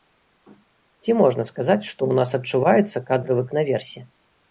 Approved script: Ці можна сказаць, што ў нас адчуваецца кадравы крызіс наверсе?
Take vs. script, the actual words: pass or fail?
fail